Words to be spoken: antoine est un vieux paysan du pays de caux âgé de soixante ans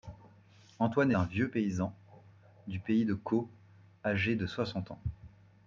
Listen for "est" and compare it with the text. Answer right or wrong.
wrong